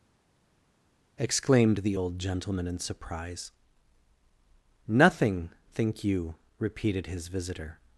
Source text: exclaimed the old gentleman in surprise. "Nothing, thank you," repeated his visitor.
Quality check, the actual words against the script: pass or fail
fail